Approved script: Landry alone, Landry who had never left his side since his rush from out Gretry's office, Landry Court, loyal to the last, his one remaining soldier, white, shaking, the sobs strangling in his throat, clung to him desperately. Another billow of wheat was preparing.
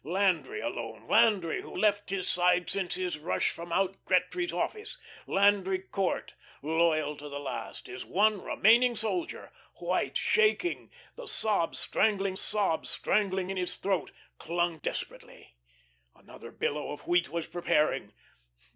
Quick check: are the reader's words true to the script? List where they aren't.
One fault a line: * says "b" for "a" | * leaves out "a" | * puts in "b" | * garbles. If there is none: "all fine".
* leaves out "had never"
* puts in "sobs strangling"
* leaves out "to him"